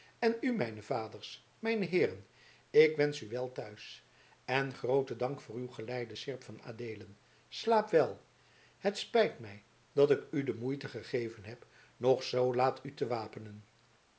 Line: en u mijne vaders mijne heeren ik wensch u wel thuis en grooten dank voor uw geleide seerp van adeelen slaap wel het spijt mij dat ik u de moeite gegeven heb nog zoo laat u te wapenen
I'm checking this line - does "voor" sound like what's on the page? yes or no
yes